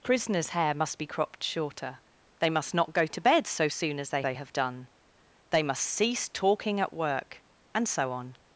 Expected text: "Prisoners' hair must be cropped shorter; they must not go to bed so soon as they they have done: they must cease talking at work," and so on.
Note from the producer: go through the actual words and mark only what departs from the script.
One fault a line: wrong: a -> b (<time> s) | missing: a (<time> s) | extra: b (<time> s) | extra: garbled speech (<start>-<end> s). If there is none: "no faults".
no faults